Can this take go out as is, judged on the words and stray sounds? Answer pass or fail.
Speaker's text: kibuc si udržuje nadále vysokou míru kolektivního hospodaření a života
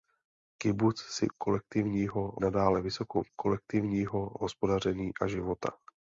fail